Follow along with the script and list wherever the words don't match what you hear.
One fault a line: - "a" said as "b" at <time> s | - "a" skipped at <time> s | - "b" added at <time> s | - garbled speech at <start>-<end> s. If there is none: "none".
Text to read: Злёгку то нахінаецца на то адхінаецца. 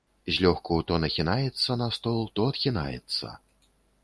- "стол" added at 2.0 s